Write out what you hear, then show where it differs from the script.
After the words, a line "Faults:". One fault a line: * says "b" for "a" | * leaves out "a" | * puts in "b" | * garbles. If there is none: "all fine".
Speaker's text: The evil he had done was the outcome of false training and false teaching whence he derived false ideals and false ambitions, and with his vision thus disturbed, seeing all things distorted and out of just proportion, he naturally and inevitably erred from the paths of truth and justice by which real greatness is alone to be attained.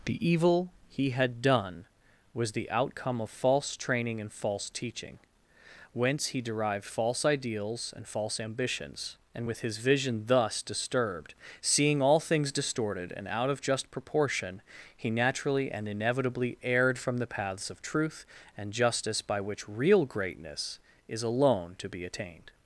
The evil he had done was the outcome of false training and false teaching whence he derived false ideals and false ambitions, and with his vision thus disturbed, seeing all things distorted and out of just proportion, he naturally and inevitably erred from the paths of truth and justice by which real greatness is alone to be attained.
Faults:
all fine